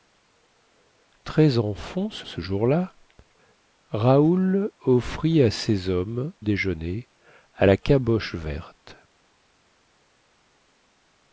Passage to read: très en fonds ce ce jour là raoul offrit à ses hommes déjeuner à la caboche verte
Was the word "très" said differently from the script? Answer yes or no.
no